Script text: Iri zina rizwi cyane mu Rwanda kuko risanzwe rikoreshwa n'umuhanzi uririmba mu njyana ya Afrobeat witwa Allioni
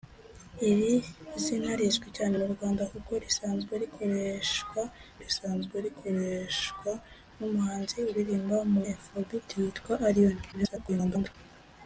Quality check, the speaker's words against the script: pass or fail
fail